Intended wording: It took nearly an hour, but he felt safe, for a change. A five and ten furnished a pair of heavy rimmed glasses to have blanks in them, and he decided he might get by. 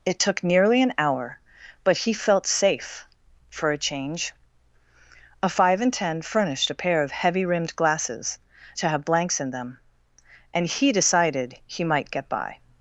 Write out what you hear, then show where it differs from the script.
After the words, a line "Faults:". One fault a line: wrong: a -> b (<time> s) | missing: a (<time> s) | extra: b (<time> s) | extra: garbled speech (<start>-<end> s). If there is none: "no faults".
It took nearly an hour, but he felt safe, for a change. A five and ten furnished a pair of heavy rimmed glasses to have blanks in them, and he decided he might get by.
Faults:
no faults